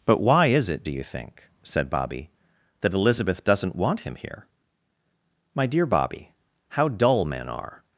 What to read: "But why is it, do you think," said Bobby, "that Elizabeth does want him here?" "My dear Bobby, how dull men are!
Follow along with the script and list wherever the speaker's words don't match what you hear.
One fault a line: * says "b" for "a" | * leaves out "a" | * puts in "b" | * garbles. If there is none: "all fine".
* says "doesn't" for "does"